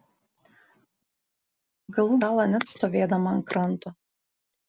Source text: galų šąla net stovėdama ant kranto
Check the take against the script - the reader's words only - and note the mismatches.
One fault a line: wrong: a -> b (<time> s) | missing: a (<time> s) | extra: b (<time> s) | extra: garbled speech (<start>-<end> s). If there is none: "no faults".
no faults